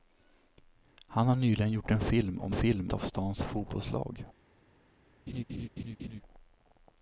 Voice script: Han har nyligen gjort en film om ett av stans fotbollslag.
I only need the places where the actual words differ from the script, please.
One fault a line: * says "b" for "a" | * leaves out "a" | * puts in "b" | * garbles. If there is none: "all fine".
* says "film" for "ett"